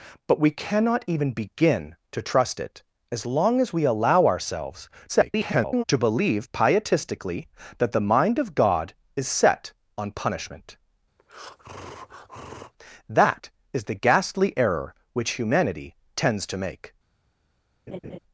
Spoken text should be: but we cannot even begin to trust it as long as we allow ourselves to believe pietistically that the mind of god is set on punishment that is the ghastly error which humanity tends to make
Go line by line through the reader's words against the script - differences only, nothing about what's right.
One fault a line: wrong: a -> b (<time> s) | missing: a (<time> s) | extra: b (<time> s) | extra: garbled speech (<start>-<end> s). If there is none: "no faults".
extra: garbled speech (5.1-5.8 s)